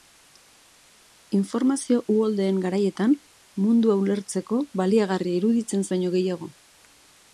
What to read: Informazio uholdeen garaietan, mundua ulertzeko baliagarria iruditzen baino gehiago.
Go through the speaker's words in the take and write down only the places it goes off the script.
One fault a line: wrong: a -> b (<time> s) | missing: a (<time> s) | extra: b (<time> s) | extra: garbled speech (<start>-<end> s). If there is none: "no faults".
no faults